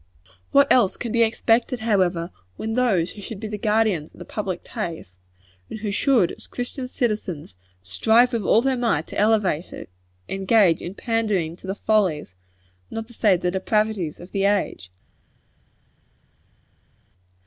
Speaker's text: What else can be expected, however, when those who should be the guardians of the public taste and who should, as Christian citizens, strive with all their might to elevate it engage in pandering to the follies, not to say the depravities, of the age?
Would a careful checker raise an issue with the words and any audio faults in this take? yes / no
no